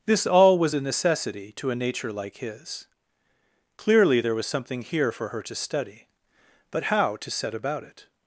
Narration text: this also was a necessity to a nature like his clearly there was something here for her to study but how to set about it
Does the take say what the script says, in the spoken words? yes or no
no